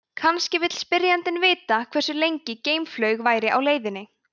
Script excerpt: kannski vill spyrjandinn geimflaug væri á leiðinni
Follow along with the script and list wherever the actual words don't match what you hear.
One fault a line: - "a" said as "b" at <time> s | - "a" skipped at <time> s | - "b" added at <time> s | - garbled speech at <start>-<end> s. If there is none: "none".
- "vita hversu lengi" added at 1.4 s